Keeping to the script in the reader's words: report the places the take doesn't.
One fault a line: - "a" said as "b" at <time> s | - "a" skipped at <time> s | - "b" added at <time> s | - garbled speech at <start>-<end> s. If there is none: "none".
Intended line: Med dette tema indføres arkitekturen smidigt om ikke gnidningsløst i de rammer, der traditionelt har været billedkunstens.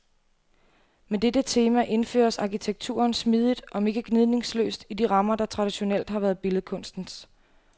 none